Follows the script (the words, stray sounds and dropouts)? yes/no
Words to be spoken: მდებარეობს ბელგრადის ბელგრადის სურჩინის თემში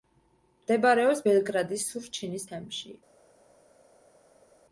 no